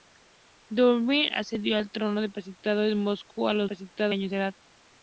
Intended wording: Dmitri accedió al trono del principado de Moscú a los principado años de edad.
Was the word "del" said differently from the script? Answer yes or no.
no